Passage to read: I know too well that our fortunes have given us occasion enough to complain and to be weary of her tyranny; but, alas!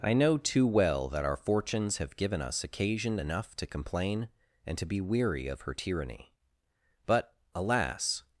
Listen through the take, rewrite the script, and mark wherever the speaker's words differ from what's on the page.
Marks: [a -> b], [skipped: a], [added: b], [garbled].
I know too well that our fortunes have given us occasion enough to complain and to be weary of her tyranny; but, alas!